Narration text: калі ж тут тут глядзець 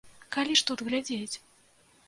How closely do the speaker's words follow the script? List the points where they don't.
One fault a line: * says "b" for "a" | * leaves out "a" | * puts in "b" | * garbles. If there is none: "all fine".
* leaves out "тут"